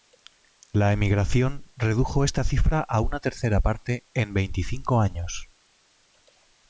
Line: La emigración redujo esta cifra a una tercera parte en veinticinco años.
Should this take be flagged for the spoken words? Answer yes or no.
no